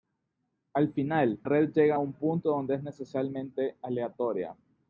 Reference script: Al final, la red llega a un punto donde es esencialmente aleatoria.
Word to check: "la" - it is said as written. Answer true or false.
false